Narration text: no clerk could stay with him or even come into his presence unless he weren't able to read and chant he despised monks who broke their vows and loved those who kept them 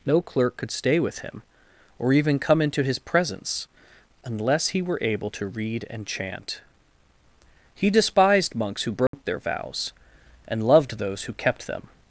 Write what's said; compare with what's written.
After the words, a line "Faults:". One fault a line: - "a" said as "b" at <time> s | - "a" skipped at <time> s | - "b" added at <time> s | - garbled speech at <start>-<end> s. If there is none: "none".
no clerk could stay with him or even come into his presence unless he were able to read and chant he despised monks who broke their vows and loved those who kept them
Faults:
- "weren't" said as "were" at 4.8 s